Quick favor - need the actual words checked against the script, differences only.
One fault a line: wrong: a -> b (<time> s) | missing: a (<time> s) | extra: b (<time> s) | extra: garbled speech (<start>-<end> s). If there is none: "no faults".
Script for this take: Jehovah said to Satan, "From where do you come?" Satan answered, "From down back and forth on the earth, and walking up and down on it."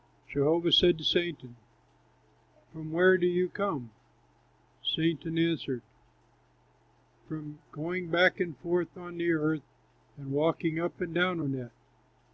wrong: down -> going (7.7 s)